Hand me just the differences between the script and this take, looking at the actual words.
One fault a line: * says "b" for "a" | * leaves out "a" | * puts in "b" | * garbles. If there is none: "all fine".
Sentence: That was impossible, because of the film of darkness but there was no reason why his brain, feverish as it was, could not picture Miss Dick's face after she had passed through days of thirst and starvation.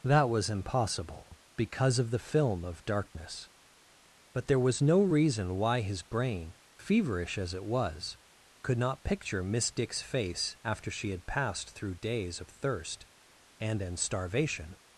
* puts in "and"